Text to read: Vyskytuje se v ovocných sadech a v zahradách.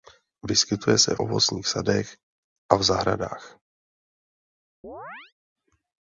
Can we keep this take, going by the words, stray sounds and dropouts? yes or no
no